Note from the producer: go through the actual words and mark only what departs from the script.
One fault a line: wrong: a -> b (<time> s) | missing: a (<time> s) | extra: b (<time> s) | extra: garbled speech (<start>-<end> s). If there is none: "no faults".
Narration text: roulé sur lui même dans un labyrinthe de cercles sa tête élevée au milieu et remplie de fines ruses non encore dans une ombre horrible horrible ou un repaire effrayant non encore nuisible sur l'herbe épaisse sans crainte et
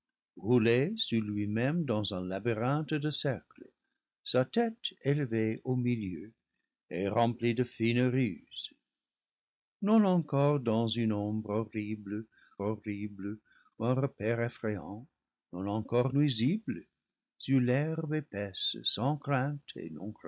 no faults